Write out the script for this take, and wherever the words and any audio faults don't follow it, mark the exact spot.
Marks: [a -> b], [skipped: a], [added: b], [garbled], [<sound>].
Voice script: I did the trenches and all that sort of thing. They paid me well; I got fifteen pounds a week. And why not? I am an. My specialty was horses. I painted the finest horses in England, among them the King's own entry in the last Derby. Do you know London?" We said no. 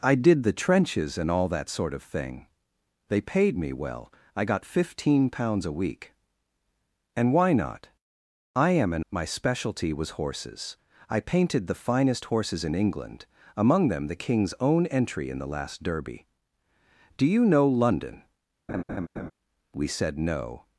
I did the trenches and all that sort of thing. They paid me well; I got fifteen pounds a week. And why not? I am an. My specialty was horses. I painted the finest horses in England, among them the King's own entry in the last Derby. Do you know London?" [laugh] We said no.